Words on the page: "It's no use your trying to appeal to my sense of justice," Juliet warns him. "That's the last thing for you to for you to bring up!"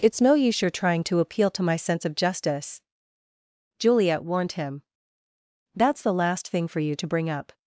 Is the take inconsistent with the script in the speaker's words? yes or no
yes